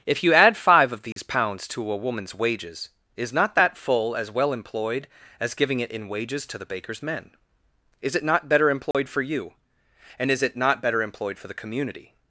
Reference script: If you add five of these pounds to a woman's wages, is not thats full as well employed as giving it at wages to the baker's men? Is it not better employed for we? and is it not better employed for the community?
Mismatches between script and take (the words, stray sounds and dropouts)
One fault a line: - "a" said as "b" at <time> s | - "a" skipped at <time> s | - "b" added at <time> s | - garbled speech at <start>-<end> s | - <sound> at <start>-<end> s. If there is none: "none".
- dropout at 1.1-1.2 s
- "thats" said as "that" at 3.5 s
- "at" said as "in" at 5.9 s
- dropout at 8.9-8.9 s
- "we" said as "you" at 9.2 s